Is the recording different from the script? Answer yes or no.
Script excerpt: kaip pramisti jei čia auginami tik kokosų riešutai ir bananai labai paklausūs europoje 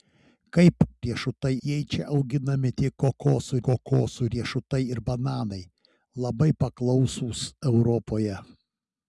yes